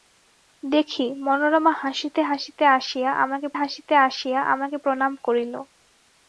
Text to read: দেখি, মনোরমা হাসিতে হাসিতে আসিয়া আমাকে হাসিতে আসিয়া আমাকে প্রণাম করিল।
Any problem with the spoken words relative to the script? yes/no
no